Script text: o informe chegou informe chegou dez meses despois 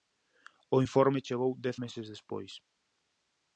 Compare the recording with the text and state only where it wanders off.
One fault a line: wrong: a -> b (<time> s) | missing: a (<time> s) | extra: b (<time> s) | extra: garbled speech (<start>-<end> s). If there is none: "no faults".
missing: informe chegou (1.5 s)